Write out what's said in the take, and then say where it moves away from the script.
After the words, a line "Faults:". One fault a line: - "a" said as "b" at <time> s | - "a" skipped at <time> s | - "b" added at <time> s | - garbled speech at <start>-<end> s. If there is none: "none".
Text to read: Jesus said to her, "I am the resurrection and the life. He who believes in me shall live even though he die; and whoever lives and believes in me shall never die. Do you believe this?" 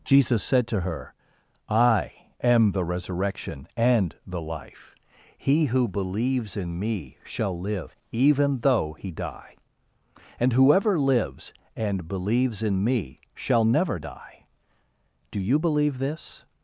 Jesus said to her, "I am the resurrection and the life. He who believes in me shall live even though he die; and whoever lives and believes in me shall never die. Do you believe this?"
Faults:
none